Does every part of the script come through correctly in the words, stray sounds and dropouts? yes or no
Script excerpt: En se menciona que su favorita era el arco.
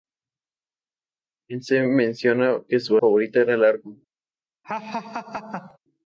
no